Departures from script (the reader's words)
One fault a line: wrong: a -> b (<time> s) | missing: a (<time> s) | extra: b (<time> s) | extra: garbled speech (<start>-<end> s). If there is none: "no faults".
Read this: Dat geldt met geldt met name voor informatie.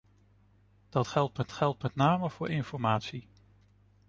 no faults